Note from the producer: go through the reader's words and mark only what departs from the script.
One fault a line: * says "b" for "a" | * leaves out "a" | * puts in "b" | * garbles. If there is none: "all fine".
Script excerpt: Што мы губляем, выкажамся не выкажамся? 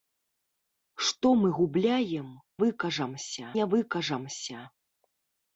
all fine